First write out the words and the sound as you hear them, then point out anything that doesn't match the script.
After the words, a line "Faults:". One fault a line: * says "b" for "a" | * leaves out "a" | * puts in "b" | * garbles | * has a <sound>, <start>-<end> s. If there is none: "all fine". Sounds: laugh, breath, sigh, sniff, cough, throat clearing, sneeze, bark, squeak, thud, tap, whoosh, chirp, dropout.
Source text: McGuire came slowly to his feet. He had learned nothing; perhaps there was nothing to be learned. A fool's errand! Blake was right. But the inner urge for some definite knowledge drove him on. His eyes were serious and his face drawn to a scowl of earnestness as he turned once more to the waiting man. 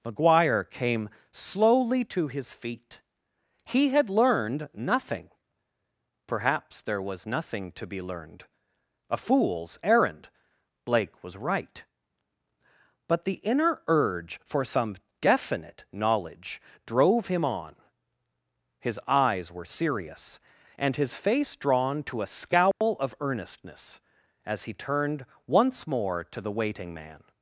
McGuire came slowly to his feet. He had learned nothing; perhaps there was nothing to be learned. A fool's errand! Blake was right. But the inner urge for some definite knowledge drove him on. His eyes were serious and his face drawn to a scowl of earnestness as he turned once more to the waiting man.
Faults:
* has a dropout, 22.7-22.8 s